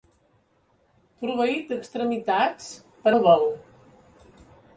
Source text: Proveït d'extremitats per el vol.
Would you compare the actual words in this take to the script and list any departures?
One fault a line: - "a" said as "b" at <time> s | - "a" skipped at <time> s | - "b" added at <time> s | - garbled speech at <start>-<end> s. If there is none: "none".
none